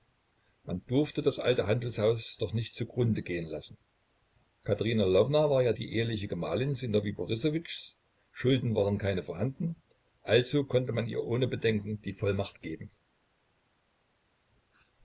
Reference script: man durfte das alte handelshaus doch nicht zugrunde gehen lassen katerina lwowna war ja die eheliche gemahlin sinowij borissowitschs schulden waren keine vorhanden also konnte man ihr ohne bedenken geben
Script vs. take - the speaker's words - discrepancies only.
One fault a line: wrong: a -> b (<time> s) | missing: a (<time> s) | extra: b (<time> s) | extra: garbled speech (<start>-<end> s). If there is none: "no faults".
extra: die vollmacht (12.0 s)